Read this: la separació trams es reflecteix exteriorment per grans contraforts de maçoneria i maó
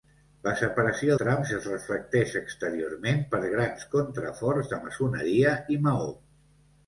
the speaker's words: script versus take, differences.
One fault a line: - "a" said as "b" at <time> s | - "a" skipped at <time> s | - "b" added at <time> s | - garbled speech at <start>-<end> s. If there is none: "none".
none